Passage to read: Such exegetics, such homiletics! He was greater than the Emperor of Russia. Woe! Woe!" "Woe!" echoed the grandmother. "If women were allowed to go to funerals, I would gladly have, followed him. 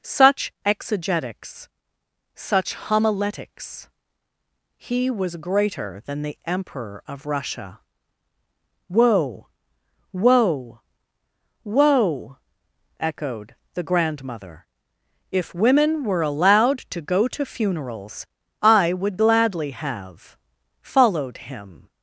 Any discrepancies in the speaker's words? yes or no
no